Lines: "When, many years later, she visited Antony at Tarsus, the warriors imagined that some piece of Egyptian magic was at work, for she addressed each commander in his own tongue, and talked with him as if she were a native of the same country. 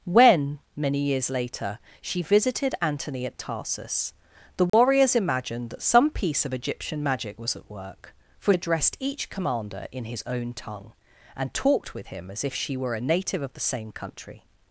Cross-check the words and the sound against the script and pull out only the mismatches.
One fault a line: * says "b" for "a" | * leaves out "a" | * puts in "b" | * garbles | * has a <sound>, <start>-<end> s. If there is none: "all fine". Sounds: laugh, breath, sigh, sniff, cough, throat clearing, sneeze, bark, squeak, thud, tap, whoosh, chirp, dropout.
* has a dropout, 4.7-4.7 s
* leaves out "she"